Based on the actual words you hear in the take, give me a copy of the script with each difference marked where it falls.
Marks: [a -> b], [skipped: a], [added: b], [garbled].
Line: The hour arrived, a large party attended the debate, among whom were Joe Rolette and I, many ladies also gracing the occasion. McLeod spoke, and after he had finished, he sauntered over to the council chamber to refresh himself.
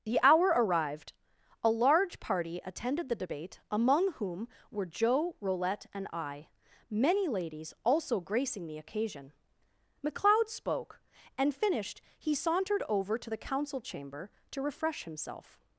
The hour arrived, a large party attended the debate, among whom were Joe Rolette and I, many ladies also gracing the occasion. McLeod spoke, and [skipped: after he had] finished, he sauntered over to the council chamber to refresh himself.